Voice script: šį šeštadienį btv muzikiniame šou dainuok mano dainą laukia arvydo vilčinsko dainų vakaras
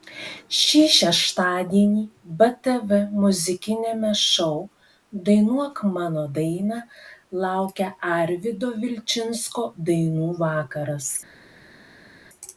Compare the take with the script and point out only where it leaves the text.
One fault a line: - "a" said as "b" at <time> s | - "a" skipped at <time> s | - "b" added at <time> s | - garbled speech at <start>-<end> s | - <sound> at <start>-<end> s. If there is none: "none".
none